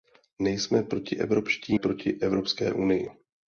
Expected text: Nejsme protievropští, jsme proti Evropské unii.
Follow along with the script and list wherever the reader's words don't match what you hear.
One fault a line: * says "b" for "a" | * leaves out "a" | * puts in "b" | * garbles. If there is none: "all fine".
* leaves out "jsme"